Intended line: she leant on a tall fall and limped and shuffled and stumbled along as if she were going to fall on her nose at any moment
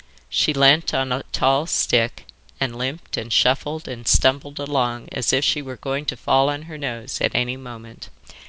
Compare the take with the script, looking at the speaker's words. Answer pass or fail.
fail